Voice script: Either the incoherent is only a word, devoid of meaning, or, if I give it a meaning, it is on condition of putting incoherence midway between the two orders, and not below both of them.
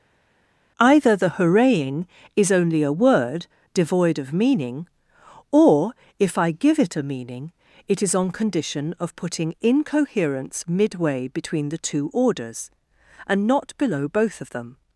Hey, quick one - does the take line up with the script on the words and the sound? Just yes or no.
no